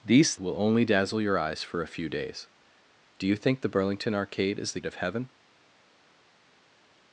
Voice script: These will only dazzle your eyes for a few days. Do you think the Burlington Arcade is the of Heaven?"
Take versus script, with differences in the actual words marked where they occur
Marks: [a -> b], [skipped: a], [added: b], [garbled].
These will only dazzle your eyes for a few days. Do you think the Burlington Arcade is the of Heaven?"